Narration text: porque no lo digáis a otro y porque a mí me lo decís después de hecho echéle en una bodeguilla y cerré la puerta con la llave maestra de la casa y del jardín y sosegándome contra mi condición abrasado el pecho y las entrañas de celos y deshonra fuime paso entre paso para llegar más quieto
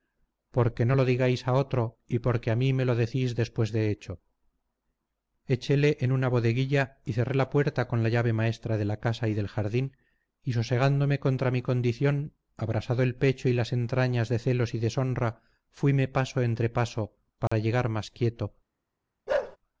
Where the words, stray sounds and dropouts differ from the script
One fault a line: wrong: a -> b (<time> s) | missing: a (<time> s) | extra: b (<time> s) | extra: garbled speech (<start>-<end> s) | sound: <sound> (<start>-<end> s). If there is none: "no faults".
sound: dropout (17.5-17.5 s)
sound: bark (19.3-19.6 s)